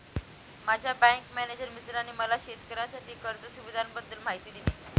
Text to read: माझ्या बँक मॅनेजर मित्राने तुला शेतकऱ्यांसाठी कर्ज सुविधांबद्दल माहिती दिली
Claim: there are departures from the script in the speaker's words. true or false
true